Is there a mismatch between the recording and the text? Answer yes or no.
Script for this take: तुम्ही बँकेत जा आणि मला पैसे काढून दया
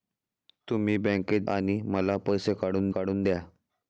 yes